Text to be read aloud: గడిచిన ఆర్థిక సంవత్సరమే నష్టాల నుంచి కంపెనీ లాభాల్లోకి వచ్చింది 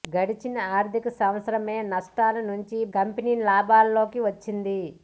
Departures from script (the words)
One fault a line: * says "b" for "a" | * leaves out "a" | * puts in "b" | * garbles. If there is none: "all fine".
all fine